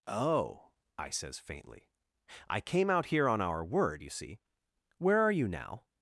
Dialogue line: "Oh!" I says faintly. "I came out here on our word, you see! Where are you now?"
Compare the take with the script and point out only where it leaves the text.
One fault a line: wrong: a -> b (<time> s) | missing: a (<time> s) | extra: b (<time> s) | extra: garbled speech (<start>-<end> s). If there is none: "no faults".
no faults